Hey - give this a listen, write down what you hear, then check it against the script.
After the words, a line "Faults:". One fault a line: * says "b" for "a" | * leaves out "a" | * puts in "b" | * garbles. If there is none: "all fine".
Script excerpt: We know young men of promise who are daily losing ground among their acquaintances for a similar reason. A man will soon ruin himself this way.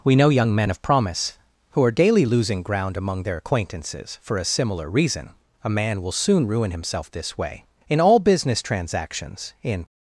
We know young men of promise who are daily losing ground among their acquaintances for a similar reason. A man will soon ruin himself this way. In all business transactions, in
Faults:
* puts in "In all business transactions in"